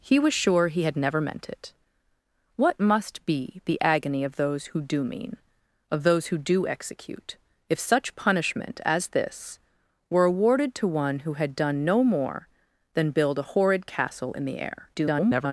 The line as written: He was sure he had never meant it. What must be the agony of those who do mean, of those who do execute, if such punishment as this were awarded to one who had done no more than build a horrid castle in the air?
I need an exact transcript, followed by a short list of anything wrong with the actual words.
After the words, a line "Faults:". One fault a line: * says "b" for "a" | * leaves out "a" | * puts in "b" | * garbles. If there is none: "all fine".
He was sure he had never meant it. What must be the agony of those who do mean, of those who do execute, if such punishment as this were awarded to one who had done no more than build a horrid castle in the air? [garbled]
Faults:
* garbles